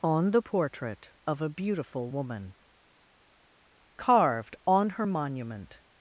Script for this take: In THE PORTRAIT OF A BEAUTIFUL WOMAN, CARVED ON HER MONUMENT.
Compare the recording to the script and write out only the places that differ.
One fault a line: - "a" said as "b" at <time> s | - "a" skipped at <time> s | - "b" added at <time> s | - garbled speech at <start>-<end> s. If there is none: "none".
- "In" said as "ON" at 0.0 s